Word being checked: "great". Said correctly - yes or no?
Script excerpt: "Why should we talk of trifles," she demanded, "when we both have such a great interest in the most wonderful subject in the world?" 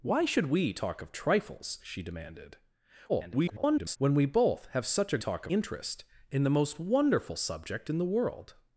no